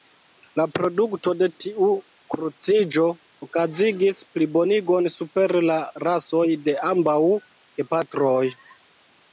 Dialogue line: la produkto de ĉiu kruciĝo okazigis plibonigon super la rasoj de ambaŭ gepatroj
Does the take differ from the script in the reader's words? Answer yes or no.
yes